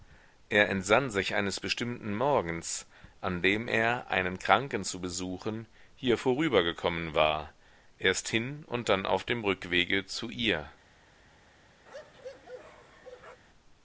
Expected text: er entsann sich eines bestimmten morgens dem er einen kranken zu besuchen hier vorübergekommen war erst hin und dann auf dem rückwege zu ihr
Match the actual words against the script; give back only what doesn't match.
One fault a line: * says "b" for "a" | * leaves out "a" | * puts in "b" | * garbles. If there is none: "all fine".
* puts in "an"